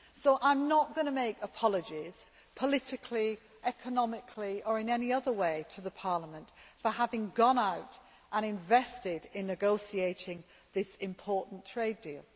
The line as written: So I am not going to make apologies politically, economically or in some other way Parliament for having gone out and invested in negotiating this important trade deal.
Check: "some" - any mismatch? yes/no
yes